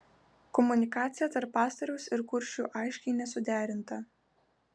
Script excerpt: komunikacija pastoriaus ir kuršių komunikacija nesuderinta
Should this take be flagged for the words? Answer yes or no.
yes